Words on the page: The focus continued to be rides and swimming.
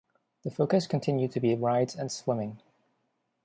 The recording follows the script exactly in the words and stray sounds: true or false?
true